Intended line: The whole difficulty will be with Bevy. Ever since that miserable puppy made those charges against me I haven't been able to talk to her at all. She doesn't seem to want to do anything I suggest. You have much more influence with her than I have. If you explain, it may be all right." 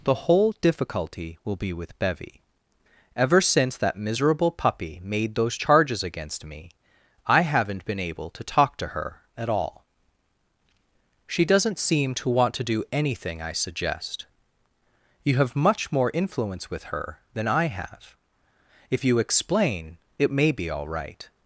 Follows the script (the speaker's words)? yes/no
yes